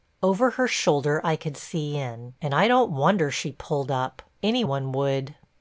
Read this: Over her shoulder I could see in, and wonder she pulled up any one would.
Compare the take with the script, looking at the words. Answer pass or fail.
fail